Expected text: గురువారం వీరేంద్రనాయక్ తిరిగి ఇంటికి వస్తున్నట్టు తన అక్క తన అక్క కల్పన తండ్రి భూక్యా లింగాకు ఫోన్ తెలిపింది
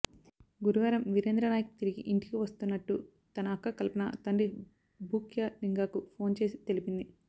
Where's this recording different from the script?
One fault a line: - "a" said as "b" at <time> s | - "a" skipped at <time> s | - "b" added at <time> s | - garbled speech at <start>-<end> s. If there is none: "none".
- "తన అక్క" skipped at 3.8 s
- "చేసి" added at 6.4 s